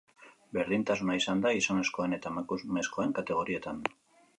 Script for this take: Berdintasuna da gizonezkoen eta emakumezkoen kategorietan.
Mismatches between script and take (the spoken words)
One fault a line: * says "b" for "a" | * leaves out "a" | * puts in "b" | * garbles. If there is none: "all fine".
* puts in "izan"